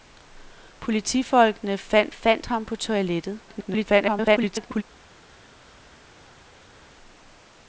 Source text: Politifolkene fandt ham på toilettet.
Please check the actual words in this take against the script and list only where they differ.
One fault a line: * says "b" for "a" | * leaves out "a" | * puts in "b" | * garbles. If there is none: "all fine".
* puts in "fandt"
* garbles